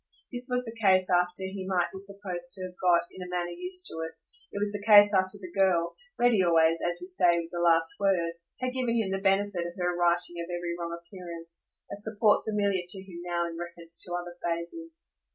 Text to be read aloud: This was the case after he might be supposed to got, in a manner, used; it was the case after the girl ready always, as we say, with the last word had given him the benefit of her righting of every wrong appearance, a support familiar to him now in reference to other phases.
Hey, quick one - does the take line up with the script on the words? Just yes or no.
no